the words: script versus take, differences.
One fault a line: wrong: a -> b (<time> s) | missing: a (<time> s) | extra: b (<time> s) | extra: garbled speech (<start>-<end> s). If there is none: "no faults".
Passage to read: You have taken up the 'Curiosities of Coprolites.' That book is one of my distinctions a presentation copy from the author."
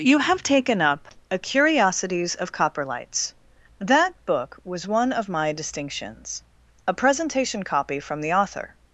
wrong: the -> a (1.3 s)
wrong: is -> was (4.6 s)